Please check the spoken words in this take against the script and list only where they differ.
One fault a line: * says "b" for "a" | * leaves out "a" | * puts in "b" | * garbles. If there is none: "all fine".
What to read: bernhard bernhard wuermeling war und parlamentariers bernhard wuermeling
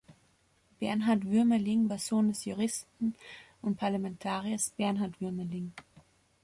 * leaves out "bernhard"
* puts in "sohn des juristen"